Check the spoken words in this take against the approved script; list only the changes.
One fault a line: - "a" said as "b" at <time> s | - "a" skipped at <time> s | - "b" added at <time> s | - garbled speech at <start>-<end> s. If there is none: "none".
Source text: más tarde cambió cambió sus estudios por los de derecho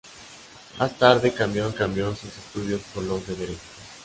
none